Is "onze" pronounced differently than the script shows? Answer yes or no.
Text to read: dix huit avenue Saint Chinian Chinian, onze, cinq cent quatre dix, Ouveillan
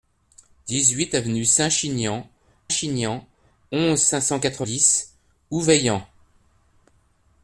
no